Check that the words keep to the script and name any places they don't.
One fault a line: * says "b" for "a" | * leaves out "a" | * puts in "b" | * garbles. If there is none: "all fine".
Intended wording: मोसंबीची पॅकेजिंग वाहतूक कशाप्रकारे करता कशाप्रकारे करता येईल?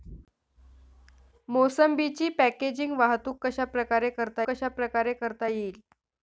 all fine